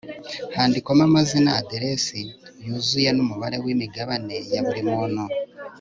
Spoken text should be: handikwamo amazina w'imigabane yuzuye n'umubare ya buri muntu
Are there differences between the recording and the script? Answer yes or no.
yes